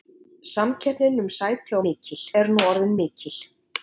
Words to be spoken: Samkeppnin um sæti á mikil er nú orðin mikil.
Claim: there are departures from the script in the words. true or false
false